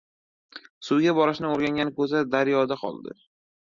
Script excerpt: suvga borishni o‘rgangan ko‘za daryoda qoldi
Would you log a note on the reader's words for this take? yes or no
no